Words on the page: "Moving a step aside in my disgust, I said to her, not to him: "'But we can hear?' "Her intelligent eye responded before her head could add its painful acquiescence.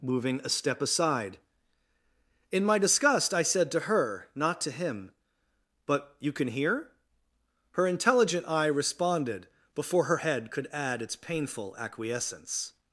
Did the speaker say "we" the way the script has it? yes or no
no